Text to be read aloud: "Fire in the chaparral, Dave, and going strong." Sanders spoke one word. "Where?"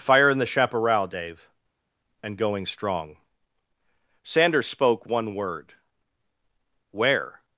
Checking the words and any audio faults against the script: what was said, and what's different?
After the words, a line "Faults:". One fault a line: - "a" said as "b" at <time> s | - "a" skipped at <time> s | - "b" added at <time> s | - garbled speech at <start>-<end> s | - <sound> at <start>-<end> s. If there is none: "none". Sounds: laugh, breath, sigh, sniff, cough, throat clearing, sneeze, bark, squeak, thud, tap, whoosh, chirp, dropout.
"Fire in the chaparral, Dave, and going strong." Sanders spoke one word. "Where?"
Faults:
none